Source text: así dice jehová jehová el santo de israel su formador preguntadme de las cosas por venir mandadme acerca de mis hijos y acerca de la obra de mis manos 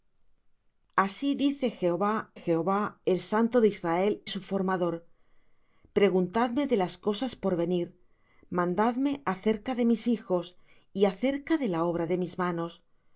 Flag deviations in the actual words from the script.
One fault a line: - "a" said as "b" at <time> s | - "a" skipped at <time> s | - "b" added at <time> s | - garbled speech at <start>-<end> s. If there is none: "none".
none